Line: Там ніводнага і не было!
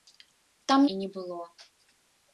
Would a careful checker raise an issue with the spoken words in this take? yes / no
yes